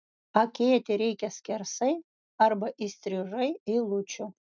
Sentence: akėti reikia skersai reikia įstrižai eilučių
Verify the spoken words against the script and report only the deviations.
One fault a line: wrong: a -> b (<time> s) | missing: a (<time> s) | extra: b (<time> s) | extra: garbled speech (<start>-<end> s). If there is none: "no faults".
wrong: reikia -> arba (2.5 s)